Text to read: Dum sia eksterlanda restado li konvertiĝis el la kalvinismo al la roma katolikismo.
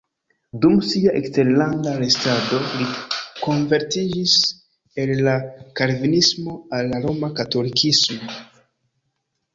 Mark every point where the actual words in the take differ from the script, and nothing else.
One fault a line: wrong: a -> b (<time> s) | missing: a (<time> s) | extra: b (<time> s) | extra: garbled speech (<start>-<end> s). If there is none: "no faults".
no faults